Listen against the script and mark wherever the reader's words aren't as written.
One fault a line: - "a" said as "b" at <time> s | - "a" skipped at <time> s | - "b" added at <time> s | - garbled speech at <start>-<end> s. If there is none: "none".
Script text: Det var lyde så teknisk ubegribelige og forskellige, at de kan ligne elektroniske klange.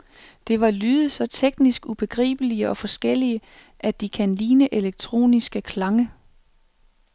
none